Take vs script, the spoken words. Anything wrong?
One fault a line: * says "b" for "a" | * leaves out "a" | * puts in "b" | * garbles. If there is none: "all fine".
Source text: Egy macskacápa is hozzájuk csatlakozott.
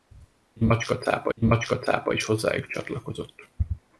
* puts in "egy macskacápa"